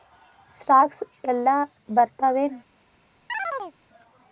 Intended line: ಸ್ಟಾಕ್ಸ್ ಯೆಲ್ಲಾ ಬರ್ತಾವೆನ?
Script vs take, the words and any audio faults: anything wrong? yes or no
yes